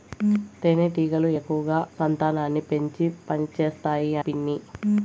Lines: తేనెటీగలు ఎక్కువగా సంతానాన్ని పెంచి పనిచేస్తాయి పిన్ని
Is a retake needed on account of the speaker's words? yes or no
no